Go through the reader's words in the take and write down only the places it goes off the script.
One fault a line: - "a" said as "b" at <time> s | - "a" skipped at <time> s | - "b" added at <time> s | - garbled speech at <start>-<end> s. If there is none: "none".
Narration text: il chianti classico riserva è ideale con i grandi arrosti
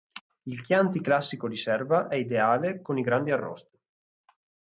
none